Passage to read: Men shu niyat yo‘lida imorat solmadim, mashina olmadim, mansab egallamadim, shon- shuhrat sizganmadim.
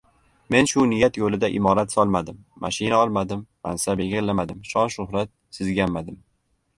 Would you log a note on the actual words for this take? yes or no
no